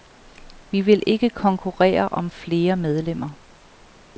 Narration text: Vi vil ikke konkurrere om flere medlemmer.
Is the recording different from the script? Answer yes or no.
no